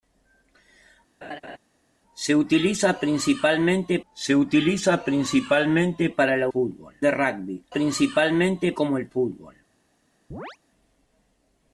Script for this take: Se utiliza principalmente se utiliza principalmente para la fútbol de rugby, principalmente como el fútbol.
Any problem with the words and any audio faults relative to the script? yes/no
yes